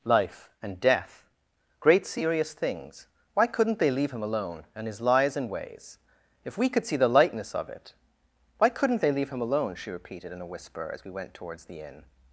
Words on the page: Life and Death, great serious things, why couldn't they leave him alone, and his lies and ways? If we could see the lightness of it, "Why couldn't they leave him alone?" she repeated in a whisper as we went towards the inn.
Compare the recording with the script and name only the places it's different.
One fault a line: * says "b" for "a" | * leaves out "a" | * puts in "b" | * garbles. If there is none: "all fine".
all fine